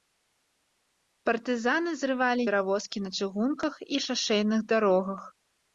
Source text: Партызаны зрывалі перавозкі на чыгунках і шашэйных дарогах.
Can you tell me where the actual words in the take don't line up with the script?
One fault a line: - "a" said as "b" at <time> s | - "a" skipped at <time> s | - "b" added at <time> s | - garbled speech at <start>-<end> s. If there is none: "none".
none